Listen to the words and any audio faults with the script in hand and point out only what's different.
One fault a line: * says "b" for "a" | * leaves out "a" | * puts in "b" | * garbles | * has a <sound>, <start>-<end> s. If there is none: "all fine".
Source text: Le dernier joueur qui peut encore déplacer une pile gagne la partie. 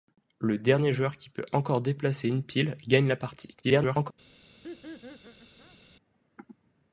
* garbles
* has a laugh, 4.6-5.8 s